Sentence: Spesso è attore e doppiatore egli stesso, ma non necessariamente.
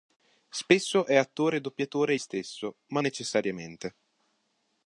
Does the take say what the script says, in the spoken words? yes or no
no